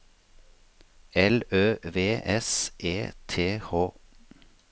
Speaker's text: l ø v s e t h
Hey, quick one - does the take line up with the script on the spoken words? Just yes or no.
yes